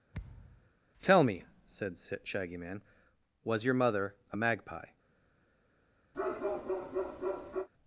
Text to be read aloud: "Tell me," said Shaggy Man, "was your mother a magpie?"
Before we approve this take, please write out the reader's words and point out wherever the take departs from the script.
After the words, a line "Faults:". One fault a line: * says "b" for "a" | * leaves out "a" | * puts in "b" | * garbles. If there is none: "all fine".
"Tell me," said Shaggy Man, "was your mother a magpie?"
Faults:
all fine